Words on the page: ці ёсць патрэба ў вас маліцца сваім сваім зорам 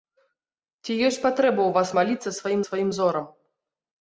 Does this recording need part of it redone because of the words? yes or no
no